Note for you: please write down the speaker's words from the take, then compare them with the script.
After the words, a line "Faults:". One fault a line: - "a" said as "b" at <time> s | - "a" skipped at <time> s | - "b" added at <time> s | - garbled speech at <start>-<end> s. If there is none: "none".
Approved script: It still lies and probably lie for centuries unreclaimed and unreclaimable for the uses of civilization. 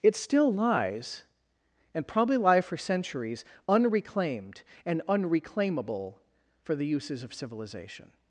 It still lies and probably lie for centuries unreclaimed and unreclaimable for the uses of civilization.
Faults:
none